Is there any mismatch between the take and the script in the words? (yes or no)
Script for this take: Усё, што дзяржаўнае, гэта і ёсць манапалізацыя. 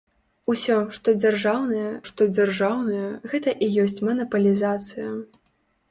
yes